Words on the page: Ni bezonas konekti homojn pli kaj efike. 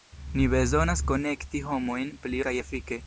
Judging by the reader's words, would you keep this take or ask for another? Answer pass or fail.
pass